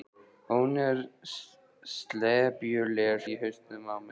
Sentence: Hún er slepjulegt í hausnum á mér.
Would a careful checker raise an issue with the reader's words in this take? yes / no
no